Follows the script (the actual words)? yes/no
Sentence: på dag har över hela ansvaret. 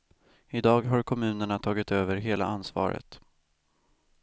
no